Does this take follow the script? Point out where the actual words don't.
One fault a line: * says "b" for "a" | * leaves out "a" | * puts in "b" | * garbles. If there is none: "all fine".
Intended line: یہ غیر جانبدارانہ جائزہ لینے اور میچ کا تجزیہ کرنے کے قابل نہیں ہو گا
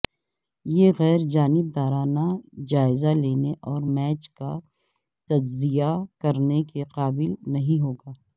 all fine